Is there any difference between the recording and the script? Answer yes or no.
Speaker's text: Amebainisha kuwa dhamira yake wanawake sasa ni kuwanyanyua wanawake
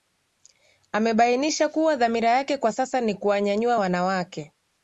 yes